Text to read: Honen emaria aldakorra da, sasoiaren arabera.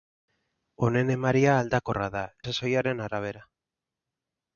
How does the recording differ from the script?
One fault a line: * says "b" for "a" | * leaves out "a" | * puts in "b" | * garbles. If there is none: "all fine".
all fine